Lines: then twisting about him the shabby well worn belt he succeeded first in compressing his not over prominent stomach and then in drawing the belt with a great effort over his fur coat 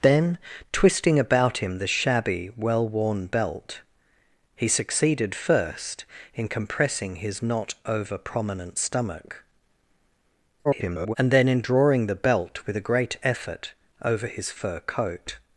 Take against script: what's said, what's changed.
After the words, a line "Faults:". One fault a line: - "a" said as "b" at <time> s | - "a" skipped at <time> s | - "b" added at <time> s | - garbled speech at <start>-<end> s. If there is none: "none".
then twisting about him the shabby well worn belt he succeeded first in compressing his not over prominent stomach [garbled] and then in drawing the belt with a great effort over his fur coat
Faults:
- garbled speech at 10.6-11.2 s